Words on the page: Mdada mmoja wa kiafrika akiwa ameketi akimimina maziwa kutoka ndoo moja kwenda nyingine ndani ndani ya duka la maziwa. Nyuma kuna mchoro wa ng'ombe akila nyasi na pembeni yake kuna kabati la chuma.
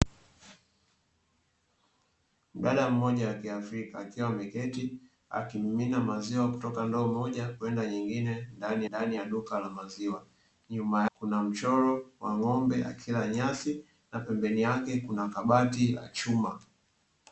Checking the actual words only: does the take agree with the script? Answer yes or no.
yes